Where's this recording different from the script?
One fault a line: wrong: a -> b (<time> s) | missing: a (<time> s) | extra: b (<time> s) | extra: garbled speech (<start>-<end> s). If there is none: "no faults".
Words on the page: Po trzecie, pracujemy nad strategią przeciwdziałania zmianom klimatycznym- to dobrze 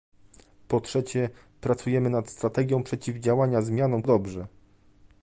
missing: klimatycznym to (4.0 s)